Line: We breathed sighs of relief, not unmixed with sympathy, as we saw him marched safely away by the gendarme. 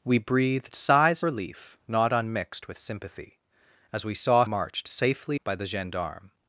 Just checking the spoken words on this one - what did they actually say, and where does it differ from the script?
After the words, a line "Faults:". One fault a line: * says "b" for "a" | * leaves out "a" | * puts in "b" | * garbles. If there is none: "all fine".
We breathed sighs relief, not unmixed with sympathy, as we saw marched safely by the gendarme.
Faults:
* leaves out "of"
* leaves out "him"
* leaves out "away"